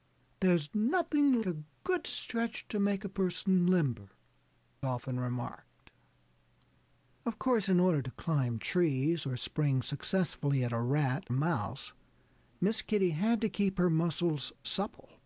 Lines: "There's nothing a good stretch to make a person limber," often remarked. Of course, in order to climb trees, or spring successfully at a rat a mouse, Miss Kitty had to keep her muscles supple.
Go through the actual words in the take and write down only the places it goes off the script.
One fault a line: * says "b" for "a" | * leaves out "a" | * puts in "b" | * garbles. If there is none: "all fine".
all fine